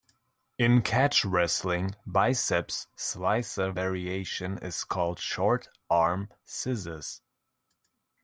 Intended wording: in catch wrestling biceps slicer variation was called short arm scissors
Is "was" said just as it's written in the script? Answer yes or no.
no